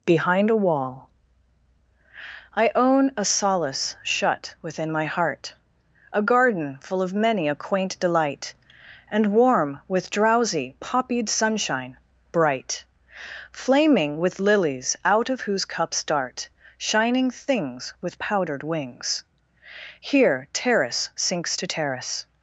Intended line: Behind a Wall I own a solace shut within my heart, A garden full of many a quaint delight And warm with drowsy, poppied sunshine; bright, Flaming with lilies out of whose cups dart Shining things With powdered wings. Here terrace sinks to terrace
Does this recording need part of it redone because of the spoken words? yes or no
no